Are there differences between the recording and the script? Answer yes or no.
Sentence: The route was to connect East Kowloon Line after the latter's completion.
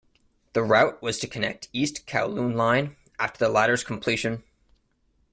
no